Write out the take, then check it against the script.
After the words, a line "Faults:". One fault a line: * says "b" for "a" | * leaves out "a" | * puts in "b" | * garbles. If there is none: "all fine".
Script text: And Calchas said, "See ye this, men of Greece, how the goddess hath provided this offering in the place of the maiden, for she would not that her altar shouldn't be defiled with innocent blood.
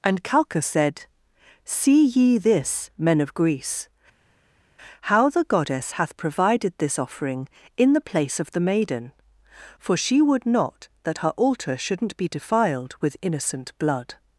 And Calchas said, "See ye this, men of Greece, how the goddess hath provided this offering in the place of the maiden, for she would not that her altar shouldn't be defiled with innocent blood.
Faults:
all fine